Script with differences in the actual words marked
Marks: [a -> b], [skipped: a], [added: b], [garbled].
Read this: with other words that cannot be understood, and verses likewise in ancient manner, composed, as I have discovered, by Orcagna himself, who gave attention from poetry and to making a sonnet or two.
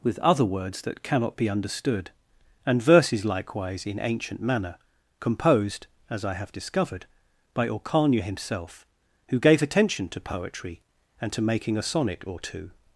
with other words that cannot be understood, and verses likewise in ancient manner, composed, as I have discovered, by Orcagna himself, who gave attention [from -> to] poetry and to making a sonnet or two.